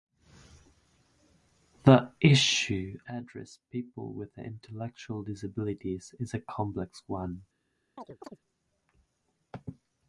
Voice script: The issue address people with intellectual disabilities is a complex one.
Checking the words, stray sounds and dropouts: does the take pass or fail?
fail